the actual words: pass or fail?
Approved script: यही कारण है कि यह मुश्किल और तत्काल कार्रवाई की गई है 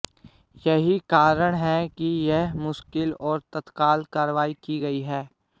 pass